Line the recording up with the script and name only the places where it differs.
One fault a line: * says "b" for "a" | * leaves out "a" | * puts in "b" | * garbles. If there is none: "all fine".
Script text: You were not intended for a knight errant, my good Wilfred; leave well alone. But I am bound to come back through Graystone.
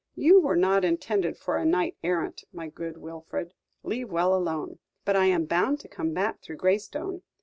all fine